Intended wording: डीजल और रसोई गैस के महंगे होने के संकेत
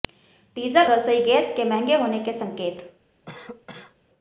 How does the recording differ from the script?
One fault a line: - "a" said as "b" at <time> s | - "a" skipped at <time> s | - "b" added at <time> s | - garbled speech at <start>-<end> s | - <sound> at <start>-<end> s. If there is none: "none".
- "और" skipped at 0.8 s
- cough at 3.2-4.0 s